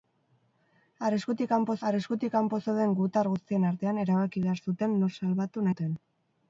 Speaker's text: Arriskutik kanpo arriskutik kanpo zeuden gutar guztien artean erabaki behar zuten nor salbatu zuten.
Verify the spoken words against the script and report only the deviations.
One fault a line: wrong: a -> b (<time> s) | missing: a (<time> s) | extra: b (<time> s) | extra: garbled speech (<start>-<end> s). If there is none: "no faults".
no faults